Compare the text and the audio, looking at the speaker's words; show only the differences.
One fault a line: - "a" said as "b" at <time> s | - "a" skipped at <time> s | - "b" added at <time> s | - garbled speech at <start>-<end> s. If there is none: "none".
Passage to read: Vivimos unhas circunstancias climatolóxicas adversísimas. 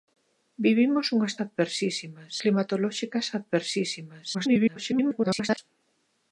- "circunstancias" said as "adversísimas" at 1.4 s
- garbled speech at 4.3-5.6 s